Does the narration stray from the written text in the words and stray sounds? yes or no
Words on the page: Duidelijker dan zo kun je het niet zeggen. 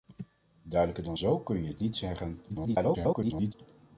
yes